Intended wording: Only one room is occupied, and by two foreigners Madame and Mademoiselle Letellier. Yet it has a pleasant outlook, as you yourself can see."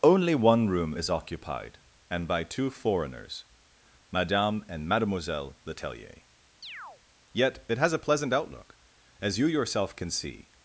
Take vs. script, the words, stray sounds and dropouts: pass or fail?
fail